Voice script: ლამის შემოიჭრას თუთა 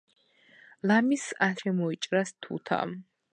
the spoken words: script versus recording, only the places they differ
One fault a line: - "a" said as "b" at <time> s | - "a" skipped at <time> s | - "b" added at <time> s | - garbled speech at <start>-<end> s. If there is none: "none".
none